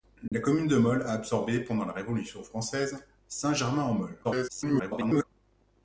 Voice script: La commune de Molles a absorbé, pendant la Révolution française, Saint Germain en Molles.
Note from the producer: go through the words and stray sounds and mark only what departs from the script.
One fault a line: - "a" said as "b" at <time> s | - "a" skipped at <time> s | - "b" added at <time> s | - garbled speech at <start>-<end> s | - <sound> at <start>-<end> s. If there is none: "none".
- dropout at 0.3-0.3 s
- garbled speech at 4.2-5.2 s